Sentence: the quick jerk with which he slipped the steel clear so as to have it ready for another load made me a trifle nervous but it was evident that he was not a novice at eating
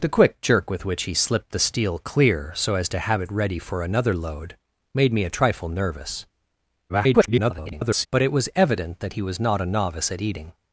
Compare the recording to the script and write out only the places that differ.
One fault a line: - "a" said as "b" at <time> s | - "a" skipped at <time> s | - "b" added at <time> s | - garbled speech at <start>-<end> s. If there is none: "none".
- garbled speech at 6.9-8.1 s